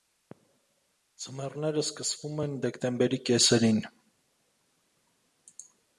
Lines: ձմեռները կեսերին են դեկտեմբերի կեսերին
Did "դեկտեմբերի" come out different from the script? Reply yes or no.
no